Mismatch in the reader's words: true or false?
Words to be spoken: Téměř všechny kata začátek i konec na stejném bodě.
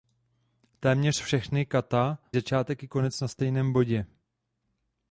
false